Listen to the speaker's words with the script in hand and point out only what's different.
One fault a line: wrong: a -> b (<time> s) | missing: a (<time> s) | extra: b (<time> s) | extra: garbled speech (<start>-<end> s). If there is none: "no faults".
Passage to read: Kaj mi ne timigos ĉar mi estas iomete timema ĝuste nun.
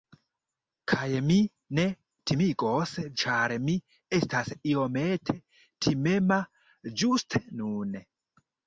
no faults